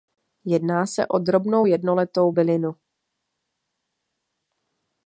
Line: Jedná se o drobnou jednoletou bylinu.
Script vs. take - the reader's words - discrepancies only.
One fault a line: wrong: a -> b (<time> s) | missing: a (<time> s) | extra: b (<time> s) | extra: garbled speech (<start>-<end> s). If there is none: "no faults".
no faults